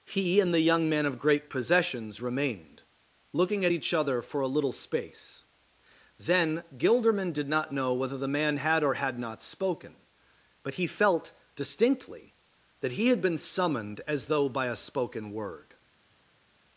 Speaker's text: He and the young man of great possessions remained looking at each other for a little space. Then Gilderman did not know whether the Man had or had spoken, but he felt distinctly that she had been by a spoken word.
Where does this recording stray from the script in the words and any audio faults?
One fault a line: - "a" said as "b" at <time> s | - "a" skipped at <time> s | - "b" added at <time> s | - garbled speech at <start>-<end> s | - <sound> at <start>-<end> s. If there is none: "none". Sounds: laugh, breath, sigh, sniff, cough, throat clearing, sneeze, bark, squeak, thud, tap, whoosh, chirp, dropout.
- "not" added at 9.2 s
- "she" said as "he" at 12.9 s
- "summoned as though" added at 13.4 s